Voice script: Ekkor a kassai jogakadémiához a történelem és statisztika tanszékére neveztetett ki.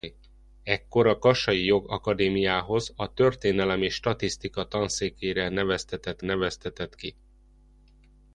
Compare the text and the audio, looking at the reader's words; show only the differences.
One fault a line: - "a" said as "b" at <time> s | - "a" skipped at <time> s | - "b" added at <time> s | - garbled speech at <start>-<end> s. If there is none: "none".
- "neveztetett" added at 6.2 s